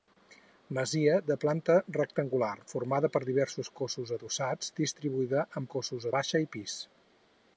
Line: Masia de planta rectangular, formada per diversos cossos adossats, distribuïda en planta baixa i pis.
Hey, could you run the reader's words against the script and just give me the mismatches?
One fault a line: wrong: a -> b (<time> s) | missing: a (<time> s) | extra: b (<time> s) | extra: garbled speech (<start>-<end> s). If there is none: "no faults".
wrong: planta -> cossos (5.8 s)